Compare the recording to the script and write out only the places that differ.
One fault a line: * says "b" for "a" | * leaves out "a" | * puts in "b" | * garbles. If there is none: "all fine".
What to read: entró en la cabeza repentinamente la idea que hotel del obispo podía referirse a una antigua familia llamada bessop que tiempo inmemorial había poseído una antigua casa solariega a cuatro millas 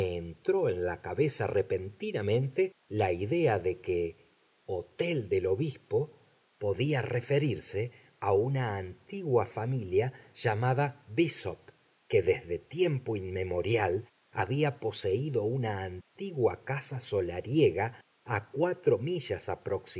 * puts in "de"
* puts in "desde"